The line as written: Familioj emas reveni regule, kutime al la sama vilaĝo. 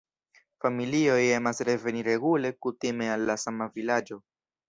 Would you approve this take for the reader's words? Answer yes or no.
yes